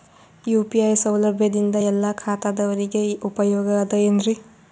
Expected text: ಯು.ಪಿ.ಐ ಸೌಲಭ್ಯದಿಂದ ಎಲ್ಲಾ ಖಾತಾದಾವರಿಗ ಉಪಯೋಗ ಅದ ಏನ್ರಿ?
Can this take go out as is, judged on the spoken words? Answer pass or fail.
pass